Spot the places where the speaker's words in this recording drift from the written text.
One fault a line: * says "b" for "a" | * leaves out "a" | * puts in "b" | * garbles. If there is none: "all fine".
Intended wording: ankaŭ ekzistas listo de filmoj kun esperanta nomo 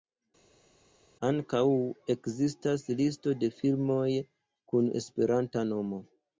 all fine